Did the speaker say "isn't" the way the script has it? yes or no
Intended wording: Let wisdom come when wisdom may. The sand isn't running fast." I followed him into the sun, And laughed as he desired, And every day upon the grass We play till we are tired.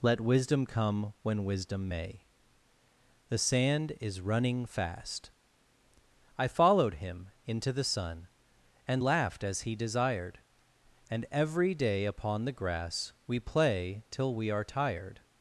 no